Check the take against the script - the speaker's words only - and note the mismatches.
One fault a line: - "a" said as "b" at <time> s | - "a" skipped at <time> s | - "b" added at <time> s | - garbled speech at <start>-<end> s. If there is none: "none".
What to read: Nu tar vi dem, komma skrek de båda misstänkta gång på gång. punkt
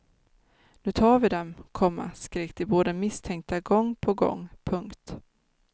none